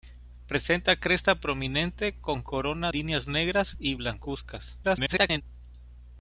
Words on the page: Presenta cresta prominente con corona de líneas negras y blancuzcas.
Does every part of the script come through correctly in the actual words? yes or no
no